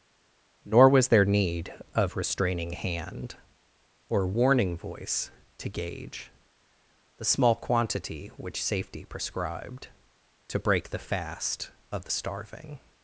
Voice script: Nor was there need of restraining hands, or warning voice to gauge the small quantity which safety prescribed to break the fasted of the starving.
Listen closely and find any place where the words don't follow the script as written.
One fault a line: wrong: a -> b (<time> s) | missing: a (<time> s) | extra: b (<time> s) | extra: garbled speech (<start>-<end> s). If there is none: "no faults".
wrong: hands -> hand (2.7 s)
wrong: fasted -> fast (11.0 s)